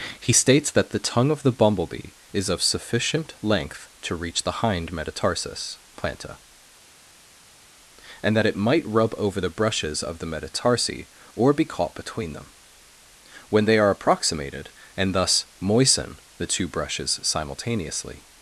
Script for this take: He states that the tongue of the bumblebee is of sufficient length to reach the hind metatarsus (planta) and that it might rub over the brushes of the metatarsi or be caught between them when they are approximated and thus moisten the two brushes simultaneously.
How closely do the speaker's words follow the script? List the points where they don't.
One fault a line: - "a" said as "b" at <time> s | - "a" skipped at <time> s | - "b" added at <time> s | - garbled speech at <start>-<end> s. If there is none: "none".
none